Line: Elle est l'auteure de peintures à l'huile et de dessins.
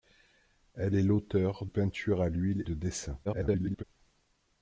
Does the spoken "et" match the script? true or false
false